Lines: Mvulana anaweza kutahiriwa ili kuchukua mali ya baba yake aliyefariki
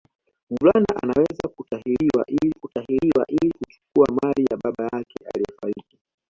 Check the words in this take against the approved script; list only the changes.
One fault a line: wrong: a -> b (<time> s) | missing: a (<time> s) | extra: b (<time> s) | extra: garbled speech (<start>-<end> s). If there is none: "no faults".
extra: kutahiriwa ili (2.6 s)